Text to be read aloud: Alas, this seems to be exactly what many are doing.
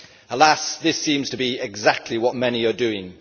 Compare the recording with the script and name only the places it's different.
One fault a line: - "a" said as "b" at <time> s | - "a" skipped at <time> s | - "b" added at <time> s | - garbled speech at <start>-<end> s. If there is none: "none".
none